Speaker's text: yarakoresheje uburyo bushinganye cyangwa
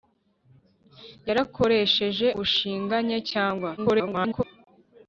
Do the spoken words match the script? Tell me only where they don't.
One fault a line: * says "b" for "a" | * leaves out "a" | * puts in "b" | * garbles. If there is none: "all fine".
* leaves out "uburyo"
* garbles